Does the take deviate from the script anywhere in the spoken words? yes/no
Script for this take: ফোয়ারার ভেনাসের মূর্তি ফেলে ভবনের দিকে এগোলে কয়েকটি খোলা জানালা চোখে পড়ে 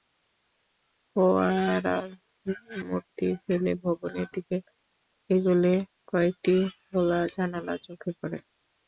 yes